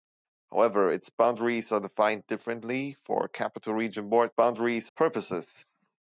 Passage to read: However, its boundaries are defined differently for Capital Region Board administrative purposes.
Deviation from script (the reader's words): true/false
true